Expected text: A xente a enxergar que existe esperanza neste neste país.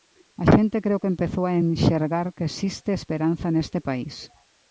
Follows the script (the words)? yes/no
no